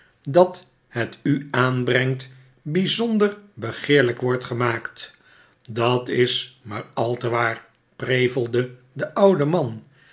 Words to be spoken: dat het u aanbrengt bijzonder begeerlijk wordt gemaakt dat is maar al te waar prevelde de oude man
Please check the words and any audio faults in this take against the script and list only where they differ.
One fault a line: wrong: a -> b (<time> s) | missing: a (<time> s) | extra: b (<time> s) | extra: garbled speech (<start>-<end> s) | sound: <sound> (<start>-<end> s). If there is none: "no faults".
no faults